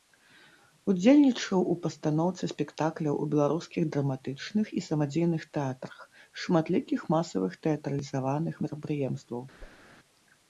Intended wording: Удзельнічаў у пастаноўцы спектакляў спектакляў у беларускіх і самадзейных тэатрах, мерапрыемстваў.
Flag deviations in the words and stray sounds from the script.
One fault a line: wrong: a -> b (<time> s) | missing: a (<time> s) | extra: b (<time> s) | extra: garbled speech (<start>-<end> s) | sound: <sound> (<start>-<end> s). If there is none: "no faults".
missing: спектакляў (3.2 s)
extra: драматычных (4.0 s)
extra: шматлікіх масавых тэатралізаваных (6.5 s)
sound: whoosh (9.6-9.9 s)